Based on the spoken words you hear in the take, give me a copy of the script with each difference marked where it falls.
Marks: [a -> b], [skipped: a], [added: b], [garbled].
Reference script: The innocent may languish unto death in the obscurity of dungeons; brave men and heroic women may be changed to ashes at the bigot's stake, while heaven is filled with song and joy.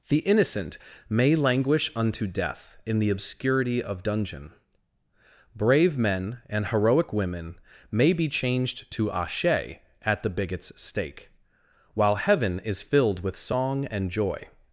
The innocent may languish unto death in the obscurity of [dungeons; -> dungeon] brave men and heroic women may be changed to [ashes -> ashe] at the bigot's stake, while heaven is filled with song and joy.